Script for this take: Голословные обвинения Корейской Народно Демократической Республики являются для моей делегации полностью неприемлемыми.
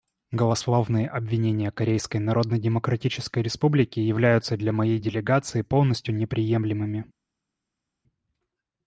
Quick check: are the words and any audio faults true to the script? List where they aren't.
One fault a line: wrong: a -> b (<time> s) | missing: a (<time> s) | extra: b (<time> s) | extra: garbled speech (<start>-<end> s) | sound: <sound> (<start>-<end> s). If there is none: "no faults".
no faults